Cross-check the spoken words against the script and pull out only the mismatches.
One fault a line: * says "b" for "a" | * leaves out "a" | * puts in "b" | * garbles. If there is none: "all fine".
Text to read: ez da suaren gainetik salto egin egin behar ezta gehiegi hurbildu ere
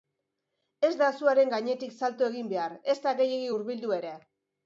* leaves out "egin"